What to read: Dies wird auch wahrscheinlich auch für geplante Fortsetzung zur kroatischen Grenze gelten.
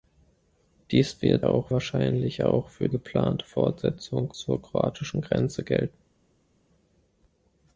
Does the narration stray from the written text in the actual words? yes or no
no